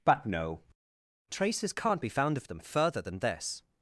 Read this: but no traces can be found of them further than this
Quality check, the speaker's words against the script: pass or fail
fail